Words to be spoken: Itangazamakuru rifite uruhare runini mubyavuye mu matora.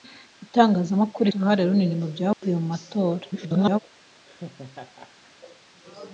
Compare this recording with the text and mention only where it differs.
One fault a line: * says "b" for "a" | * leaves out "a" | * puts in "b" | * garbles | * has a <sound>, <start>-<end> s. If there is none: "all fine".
* leaves out "rifite"
* has a dropout, 2.3-2.4 s
* garbles
* has a laugh, 4.3-5.3 s